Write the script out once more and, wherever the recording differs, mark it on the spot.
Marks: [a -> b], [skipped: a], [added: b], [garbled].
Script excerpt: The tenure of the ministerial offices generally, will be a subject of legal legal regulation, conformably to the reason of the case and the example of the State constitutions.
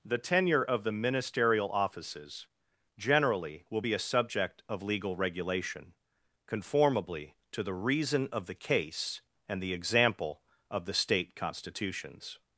The tenure of the ministerial offices generally, will be a subject of legal [skipped: legal] regulation, conformably to the reason of the case and the example of the State constitutions.